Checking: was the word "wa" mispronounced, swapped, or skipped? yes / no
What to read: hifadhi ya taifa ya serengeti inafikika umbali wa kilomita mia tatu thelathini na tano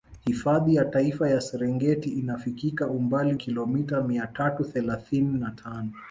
yes